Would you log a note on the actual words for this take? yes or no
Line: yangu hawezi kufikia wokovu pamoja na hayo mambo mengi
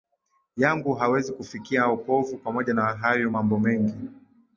no